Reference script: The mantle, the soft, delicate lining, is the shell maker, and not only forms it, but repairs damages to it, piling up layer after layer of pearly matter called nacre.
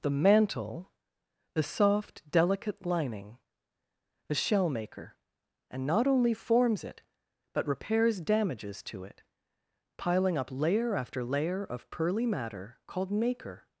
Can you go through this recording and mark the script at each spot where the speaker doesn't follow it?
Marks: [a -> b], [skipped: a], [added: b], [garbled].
The mantle, the soft, delicate lining, [skipped: is] the shell maker, and not only forms it, but repairs damages to it, piling up layer after layer of pearly matter called nacre.